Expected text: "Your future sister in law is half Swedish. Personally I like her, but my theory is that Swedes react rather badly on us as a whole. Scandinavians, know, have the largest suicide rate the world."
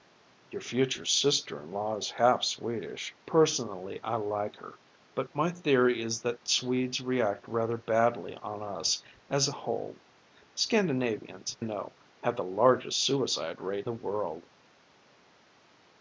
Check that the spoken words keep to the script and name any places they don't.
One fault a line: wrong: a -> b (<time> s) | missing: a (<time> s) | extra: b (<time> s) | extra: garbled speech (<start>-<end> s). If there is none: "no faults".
no faults